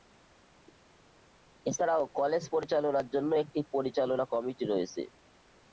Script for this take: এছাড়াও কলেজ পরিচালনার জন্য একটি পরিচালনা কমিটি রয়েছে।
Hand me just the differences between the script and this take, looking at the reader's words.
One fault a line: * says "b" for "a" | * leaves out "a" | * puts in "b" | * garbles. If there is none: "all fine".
all fine